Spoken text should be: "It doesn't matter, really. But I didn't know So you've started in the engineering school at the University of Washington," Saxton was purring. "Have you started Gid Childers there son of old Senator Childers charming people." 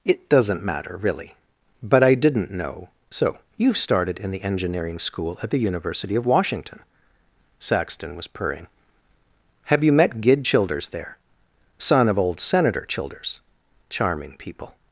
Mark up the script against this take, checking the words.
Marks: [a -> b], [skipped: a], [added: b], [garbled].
"It doesn't matter, really. But I didn't know So you've started in the engineering school at the University of Washington," Saxton was purring. "Have you [started -> met] Gid Childers there son of old Senator Childers charming people."